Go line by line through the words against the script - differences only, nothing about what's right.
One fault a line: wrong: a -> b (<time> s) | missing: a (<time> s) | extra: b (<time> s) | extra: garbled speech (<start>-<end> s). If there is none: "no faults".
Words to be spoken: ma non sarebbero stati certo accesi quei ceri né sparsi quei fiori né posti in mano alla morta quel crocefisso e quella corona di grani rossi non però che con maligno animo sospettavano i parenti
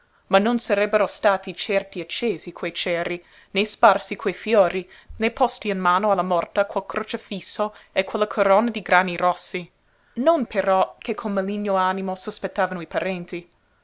no faults